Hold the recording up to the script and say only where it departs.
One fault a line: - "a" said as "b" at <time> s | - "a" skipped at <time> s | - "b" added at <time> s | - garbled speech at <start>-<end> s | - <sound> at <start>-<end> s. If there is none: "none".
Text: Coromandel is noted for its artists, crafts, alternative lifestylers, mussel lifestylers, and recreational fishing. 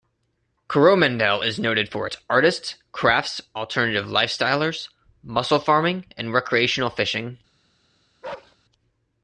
- "lifestylers" said as "farming" at 5.6 s
- bark at 8.2-8.6 s